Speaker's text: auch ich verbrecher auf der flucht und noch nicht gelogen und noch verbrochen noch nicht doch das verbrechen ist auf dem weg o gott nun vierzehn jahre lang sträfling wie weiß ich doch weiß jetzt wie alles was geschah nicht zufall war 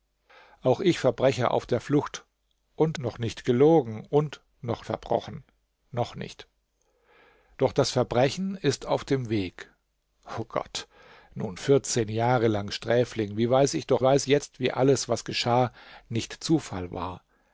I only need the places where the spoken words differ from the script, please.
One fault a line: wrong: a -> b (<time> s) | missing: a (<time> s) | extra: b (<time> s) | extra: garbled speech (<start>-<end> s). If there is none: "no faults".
no faults